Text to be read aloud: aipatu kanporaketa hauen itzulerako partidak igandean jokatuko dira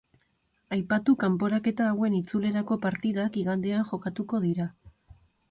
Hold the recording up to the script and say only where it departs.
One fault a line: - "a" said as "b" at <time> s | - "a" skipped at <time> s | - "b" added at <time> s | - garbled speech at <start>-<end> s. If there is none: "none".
none